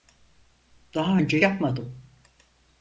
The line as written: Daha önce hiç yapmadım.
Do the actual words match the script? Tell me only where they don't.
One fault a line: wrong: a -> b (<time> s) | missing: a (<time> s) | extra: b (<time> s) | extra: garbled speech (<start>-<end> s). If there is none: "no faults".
missing: hiç (1.4 s)